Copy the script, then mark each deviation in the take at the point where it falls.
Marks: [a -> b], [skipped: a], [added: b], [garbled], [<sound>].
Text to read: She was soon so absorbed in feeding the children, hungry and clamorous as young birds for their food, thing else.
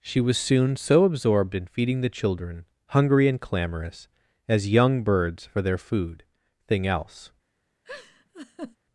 She was soon so absorbed in feeding the children, hungry and clamorous as young birds for their food, thing else. [laugh]